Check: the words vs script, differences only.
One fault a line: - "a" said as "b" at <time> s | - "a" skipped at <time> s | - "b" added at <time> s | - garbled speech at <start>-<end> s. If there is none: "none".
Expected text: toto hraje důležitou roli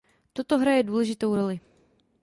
none